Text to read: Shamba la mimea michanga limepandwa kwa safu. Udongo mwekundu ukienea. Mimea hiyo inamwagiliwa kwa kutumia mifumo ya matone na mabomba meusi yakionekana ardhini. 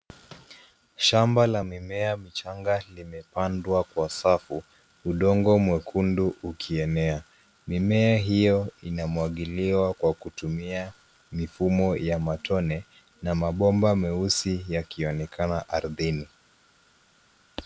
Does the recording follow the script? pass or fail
pass